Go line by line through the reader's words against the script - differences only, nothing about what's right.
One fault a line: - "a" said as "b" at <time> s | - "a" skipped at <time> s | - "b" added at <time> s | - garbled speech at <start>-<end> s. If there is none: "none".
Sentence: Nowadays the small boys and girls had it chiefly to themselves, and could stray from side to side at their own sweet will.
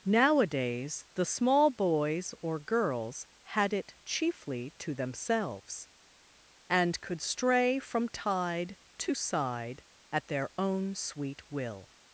- "and" said as "or" at 2.4 s
- "side" said as "tide" at 8.1 s